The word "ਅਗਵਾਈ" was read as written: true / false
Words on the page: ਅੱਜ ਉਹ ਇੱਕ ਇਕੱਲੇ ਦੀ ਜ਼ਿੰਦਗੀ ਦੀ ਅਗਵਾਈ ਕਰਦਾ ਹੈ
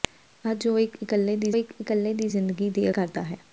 false